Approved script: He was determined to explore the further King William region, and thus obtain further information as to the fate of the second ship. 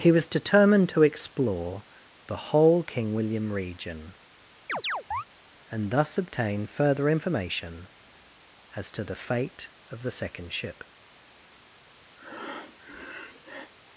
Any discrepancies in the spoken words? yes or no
yes